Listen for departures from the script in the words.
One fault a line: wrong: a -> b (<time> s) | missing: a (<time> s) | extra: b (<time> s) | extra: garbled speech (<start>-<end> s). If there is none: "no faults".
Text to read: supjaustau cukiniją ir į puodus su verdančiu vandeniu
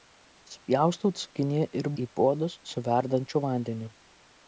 no faults